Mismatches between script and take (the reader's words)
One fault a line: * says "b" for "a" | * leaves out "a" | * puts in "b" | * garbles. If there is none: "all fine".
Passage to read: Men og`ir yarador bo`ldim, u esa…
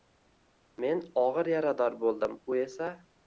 all fine